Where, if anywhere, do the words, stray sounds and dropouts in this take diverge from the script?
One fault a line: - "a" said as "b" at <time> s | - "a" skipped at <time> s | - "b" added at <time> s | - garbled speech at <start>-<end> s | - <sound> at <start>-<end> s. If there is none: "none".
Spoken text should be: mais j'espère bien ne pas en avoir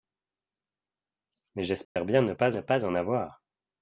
- dropout at 1.8-2.0 s
- "ne pas" added at 2.5 s